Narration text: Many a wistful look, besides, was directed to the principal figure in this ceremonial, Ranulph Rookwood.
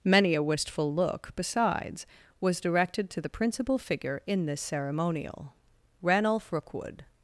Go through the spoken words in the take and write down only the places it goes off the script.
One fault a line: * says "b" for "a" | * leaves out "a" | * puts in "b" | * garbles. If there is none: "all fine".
all fine